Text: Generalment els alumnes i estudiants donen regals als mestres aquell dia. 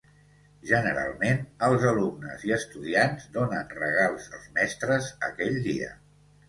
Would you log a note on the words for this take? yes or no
no